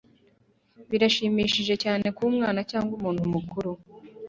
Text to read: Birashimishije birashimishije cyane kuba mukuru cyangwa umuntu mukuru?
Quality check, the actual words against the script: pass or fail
fail